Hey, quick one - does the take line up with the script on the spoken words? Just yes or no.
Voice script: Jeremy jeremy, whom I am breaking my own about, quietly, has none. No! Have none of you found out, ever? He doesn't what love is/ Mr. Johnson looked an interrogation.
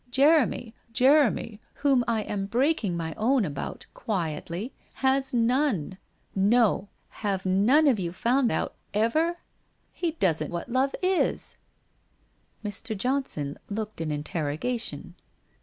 yes